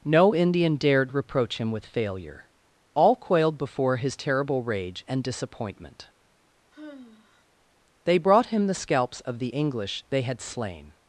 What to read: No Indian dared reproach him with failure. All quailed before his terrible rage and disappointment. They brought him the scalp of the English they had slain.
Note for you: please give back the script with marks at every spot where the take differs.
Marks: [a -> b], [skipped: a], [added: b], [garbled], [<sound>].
No Indian dared reproach him with failure. All quailed before his terrible rage and disappointment. [sigh] They brought him the [scalp -> scalps] of the English they had slain.